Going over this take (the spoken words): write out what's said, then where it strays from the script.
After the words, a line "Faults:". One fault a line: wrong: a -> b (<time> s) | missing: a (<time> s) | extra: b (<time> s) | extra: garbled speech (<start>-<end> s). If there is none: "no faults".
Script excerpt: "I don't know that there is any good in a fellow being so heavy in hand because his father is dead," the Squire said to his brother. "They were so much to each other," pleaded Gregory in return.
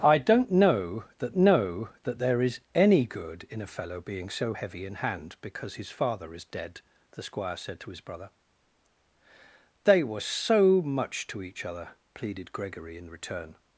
"I don't know that know that there is any good in a fellow being so heavy in hand because his father is dead," the Squire said to his brother. "They were so much to each other," pleaded Gregory in return.
Faults:
extra: know that (1.3 s)